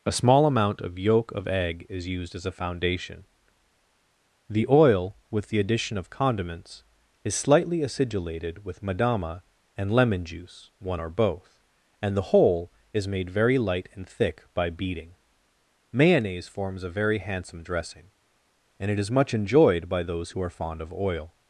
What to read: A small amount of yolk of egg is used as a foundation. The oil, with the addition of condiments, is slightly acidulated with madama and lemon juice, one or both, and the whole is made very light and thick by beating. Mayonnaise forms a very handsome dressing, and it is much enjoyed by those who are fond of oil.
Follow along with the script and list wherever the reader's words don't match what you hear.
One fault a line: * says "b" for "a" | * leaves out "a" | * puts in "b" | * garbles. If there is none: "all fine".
all fine